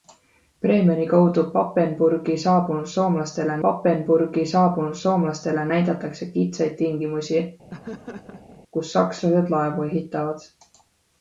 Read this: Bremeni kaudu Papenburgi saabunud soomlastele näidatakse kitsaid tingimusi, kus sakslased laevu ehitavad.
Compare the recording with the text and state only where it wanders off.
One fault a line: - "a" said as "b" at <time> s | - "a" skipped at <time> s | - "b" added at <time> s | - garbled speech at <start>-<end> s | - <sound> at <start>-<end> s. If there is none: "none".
- "Papenburgi saabunud soomlastele" added at 3.7 s
- laugh at 7.7-8.6 s